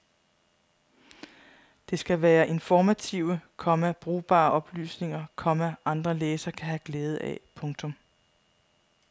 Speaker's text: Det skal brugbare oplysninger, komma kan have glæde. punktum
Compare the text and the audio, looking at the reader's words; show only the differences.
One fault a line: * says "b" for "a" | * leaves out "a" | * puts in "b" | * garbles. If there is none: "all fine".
* puts in "være informative komma"
* puts in "andre læsere"
* puts in "af"